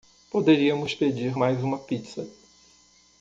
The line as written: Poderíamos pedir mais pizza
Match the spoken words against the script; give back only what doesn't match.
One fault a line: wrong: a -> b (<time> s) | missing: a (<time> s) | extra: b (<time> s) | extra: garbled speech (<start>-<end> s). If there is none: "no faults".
extra: uma (1.6 s)